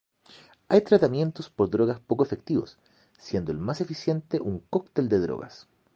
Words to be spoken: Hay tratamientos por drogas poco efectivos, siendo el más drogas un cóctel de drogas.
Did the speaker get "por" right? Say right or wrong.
right